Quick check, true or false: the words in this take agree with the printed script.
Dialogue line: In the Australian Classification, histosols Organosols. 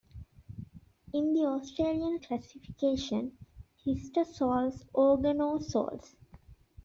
true